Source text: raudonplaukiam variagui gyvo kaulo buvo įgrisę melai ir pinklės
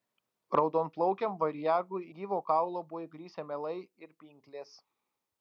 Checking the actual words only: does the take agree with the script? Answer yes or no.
yes